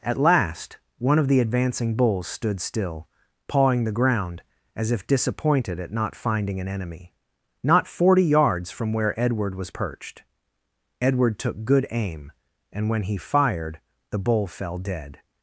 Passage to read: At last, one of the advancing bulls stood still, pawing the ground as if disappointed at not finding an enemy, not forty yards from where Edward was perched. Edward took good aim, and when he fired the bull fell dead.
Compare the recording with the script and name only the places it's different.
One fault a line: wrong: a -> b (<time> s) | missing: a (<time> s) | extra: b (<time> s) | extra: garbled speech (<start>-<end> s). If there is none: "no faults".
no faults